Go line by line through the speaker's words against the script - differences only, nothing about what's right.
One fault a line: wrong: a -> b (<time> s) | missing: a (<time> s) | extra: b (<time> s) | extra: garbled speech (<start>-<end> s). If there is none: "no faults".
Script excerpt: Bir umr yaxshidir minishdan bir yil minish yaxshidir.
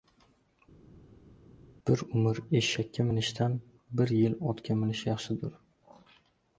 wrong: yaxshidir -> eshakka (2.6 s)
extra: otga (4.5 s)